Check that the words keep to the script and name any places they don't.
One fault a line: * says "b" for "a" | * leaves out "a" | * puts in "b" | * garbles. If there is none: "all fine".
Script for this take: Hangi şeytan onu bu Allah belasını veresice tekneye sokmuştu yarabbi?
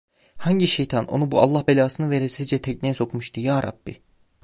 all fine